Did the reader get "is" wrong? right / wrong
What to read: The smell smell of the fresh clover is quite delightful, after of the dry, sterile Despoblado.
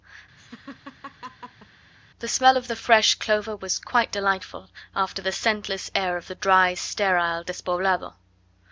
wrong